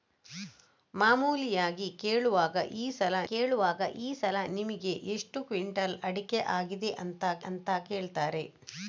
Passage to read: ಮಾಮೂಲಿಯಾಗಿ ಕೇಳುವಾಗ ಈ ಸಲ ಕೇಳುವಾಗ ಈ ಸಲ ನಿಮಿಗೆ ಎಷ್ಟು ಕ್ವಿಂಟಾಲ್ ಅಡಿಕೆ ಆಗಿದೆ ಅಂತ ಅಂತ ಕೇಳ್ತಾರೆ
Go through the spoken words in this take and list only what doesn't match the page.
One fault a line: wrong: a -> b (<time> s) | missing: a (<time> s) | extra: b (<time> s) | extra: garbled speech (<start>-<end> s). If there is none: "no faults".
no faults